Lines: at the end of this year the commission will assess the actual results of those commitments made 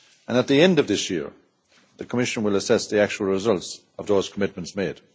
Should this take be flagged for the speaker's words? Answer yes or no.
no